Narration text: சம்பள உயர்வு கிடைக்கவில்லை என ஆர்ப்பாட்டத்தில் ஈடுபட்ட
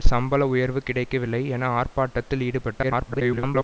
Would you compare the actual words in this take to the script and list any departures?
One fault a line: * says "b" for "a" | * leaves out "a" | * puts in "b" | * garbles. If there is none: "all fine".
* garbles